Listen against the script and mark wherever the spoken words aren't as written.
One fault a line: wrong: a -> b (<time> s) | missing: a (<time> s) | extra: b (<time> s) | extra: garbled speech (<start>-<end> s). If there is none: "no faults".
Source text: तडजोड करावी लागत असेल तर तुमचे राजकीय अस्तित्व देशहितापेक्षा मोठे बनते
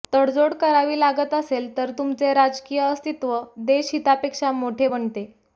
no faults